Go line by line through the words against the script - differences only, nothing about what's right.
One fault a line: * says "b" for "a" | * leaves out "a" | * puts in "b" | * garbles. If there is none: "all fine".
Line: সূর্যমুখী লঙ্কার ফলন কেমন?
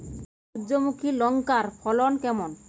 all fine